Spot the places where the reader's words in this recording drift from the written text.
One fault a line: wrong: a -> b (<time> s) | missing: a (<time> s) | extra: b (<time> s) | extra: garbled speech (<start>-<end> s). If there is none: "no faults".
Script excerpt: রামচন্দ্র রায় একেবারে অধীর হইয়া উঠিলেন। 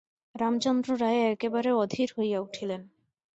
no faults